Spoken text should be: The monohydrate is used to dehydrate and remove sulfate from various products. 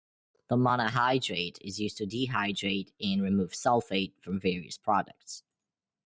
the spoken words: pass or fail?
pass